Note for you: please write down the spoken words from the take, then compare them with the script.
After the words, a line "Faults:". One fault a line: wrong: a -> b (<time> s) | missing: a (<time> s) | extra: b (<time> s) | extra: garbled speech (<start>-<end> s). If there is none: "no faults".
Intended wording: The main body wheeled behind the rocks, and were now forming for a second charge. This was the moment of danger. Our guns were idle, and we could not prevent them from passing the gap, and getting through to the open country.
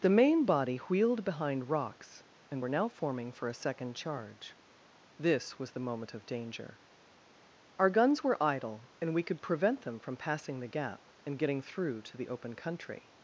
The main body wheeled behind rocks, and were now forming for a second charge. This was the moment of danger. Our guns were idle, and we could prevent them from passing the gap, and getting through to the open country.
Faults:
missing: the (1.7 s)
missing: not (9.4 s)